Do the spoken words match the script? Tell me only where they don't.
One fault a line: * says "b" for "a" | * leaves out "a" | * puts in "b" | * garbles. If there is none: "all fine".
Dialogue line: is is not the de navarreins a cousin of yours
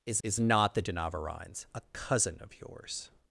all fine